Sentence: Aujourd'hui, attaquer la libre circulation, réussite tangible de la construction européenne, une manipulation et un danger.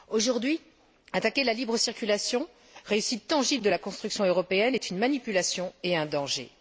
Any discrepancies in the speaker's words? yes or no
yes